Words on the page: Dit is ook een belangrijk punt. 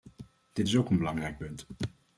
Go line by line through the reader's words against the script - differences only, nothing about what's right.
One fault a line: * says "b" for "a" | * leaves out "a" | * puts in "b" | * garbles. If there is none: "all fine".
all fine